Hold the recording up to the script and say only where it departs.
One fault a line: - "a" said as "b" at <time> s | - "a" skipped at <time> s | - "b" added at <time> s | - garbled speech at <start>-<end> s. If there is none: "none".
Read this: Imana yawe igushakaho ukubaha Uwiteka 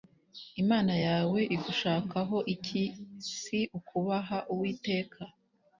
- "iki Si" added at 2.5 s